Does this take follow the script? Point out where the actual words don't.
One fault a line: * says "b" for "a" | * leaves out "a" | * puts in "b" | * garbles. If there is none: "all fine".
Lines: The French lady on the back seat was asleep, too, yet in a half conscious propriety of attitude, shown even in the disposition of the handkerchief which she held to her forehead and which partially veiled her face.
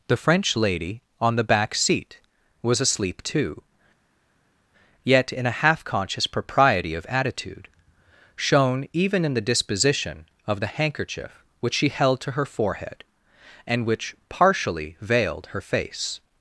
all fine